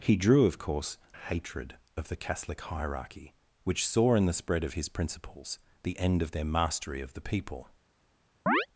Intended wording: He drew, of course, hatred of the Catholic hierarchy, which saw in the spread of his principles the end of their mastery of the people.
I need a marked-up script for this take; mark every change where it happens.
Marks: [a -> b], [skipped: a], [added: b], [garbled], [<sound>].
He drew, of course, hatred of the Catholic hierarchy, which saw in the spread of his principles the end of their mastery of the people. [chirp]